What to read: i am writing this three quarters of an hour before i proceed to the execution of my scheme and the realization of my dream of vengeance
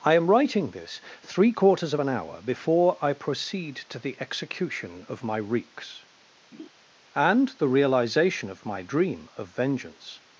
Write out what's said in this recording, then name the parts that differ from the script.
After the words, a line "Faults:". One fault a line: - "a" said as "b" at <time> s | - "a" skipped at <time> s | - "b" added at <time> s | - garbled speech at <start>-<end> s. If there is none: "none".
i am writing this three quarters of an hour before i proceed to the execution of my reeks and the realization of my dream of vengeance
Faults:
- "scheme" said as "reeks" at 5.4 s